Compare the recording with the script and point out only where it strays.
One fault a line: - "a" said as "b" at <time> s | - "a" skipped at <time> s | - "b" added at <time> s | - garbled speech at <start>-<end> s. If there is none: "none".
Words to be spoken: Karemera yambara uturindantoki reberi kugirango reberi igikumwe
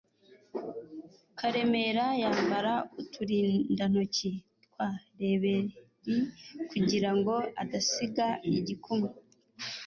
- "twa" added at 4.7 s
- "reberi" said as "adasiga" at 7.6 s